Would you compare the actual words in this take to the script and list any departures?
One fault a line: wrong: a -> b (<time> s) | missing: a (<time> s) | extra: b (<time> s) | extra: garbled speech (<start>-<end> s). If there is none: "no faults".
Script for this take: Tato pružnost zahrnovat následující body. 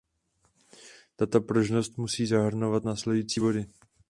extra: musí (2.0 s)